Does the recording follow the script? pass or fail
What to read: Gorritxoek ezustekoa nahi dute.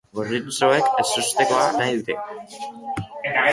pass